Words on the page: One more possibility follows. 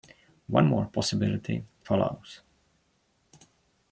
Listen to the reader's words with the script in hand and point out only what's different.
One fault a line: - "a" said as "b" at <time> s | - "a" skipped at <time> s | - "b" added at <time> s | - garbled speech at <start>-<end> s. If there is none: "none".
none